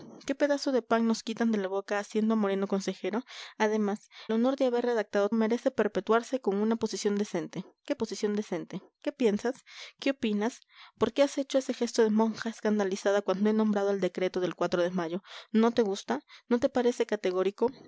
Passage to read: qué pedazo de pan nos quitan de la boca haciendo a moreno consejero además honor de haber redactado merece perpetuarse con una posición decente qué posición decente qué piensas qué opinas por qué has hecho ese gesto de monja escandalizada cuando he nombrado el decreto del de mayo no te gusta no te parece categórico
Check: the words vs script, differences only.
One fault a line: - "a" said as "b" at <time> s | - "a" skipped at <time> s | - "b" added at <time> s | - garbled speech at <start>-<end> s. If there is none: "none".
none